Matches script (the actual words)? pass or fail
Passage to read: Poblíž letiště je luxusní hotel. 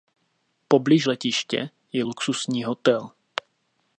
pass